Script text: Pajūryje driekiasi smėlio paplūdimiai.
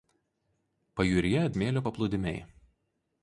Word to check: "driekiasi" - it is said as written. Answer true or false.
false